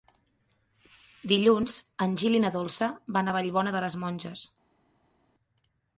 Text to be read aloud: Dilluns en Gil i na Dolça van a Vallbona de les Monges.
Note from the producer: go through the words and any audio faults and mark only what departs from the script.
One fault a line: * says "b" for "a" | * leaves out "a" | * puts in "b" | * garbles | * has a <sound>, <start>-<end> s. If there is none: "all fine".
all fine